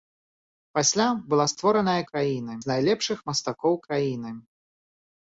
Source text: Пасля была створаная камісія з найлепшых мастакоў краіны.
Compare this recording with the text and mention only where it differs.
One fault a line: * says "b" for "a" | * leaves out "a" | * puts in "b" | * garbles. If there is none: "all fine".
* says "краіны" for "камісія"